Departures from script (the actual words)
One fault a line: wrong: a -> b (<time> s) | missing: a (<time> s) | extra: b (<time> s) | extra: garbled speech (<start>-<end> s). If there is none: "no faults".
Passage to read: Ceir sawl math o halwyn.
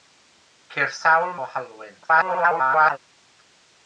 missing: math (1.3 s)
extra: garbled speech (2.0-3.0 s)